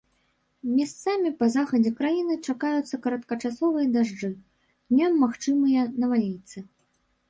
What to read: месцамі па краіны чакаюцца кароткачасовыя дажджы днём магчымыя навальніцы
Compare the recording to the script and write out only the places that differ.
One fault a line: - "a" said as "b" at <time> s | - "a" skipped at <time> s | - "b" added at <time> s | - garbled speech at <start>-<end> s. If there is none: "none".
- "захадзе" added at 1.6 s